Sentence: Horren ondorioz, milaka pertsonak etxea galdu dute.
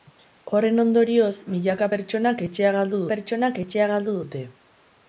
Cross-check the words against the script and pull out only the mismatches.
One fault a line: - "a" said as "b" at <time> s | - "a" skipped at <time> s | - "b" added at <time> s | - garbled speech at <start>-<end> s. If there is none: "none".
- "pertsonak etxea galdu" added at 3.1 s